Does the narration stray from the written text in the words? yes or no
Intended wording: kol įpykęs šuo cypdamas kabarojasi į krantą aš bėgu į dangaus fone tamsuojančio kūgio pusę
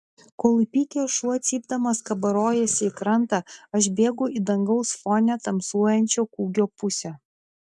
no